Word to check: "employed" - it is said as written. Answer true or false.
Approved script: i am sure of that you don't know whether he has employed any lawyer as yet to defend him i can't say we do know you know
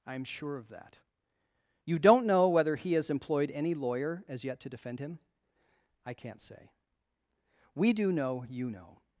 true